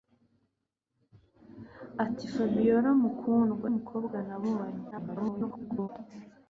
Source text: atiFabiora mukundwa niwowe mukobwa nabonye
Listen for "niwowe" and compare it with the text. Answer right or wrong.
wrong